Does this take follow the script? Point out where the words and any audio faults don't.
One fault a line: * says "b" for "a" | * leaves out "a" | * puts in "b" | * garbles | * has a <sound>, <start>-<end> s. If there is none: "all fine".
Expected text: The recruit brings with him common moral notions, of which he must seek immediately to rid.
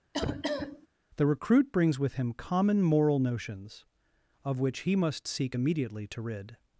* has a cough, 0.1-0.9 s